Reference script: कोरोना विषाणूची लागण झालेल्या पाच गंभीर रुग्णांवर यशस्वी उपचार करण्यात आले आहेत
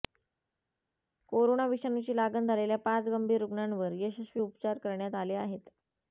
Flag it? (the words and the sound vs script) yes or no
no